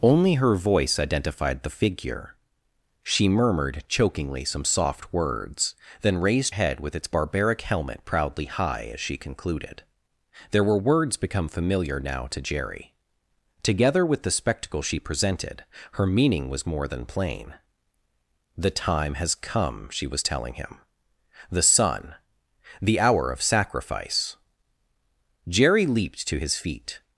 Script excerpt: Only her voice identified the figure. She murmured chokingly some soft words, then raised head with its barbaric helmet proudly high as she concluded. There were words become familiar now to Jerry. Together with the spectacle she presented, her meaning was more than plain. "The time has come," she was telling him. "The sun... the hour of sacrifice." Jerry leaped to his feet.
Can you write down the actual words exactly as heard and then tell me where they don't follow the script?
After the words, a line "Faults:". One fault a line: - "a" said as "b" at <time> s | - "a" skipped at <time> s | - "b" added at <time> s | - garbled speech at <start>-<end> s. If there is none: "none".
Only her voice identified the figure. She murmured chokingly some soft words, then raised head with its barbaric helmet proudly high as she concluded. There were words become familiar now to Jerry. Together with the spectacle she presented, her meaning was more than plain. "The time has come," she was telling him. "The sun... the hour of sacrifice." Jerry leaped to his feet.
Faults:
none